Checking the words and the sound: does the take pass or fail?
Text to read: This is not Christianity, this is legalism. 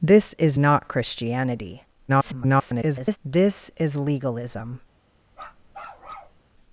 fail